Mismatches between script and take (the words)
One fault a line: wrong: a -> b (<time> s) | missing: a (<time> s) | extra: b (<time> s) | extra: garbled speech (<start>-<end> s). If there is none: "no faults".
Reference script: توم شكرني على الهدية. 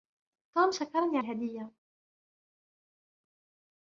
missing: على (1.2 s)